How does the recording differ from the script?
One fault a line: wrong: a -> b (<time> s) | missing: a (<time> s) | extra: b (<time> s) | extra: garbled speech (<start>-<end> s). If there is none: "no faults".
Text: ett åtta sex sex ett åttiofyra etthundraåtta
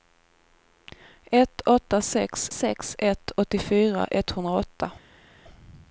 no faults